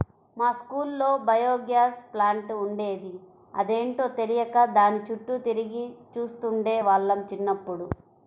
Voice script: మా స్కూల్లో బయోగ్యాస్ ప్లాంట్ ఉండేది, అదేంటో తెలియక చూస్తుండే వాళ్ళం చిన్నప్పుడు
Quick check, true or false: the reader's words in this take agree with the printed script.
false